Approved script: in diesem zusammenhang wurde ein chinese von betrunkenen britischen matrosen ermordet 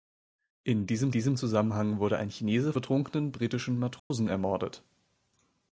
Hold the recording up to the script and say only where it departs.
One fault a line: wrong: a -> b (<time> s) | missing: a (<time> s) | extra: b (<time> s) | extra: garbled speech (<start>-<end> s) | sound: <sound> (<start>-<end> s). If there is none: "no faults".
extra: diesem (1.1 s)
missing: von (2.7 s)
sound: dropout (4.0-4.1 s)